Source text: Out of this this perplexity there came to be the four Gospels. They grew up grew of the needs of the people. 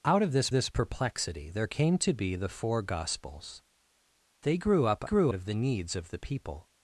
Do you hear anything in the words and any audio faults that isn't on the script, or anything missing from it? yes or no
no